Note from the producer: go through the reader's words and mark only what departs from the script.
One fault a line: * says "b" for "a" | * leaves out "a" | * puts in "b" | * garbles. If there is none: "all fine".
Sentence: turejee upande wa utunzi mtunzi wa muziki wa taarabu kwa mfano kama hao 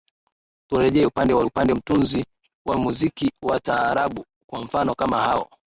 * says "upande" for "utunzi"